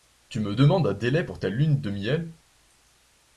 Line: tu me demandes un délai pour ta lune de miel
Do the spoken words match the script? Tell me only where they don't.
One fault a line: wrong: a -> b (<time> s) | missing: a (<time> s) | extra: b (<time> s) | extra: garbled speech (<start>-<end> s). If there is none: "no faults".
no faults